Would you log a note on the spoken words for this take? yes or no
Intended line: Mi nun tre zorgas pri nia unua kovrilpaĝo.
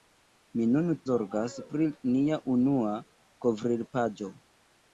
yes